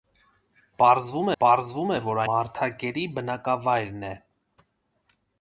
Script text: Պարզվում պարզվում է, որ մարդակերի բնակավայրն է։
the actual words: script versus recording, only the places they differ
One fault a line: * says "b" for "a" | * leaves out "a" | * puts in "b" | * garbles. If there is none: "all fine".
all fine